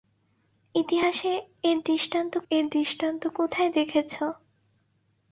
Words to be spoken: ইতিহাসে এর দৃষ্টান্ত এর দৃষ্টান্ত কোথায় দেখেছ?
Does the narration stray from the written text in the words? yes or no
no